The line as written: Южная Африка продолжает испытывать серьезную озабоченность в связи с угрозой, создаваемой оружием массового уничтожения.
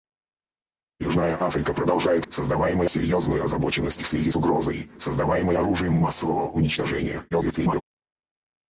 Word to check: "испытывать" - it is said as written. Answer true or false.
false